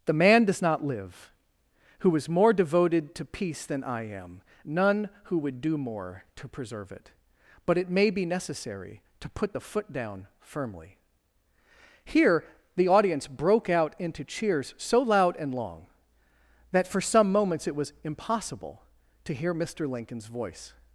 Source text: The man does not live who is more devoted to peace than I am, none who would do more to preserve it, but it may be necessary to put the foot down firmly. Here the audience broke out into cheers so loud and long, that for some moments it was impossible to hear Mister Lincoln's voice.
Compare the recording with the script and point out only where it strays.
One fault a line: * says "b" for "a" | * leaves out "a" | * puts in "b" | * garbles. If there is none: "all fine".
all fine